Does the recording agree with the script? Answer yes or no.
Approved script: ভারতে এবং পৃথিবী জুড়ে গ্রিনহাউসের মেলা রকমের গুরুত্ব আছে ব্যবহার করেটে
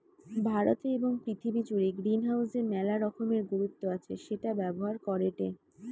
no